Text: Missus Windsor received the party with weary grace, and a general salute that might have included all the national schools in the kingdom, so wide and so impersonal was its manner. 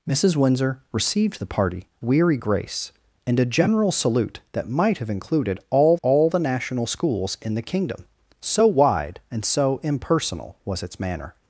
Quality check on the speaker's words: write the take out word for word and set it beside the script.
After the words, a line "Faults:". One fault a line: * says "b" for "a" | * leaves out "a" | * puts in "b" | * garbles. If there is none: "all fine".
Missus Windsor received the party weary grace, and a general salute that might have included all all the national schools in the kingdom, so wide and so impersonal was its manner.
Faults:
* leaves out "with"
* puts in "all"